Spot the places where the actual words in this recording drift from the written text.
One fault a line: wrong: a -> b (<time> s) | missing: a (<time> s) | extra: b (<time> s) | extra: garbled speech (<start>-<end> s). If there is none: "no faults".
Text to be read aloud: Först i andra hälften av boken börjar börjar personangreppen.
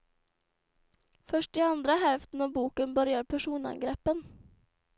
missing: börjar (3.2 s)